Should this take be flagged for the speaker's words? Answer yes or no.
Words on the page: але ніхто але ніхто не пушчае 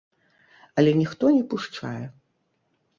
yes